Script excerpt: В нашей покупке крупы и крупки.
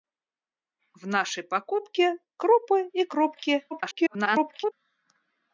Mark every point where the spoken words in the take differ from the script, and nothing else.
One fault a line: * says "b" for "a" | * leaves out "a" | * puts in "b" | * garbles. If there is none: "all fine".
* garbles